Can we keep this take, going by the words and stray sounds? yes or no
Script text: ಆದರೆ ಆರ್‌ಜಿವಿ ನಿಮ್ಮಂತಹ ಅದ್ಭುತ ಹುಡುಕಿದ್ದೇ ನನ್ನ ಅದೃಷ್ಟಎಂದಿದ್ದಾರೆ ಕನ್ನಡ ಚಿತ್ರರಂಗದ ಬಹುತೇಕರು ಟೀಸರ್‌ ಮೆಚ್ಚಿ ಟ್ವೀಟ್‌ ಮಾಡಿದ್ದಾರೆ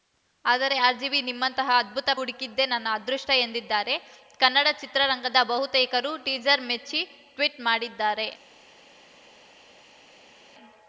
yes